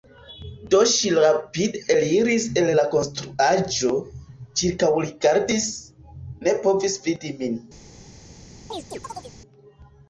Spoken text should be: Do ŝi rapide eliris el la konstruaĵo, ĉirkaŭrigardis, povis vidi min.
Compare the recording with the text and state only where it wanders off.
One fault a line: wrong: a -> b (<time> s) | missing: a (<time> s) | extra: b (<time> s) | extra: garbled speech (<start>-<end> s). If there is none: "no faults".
extra: ne (6.5 s)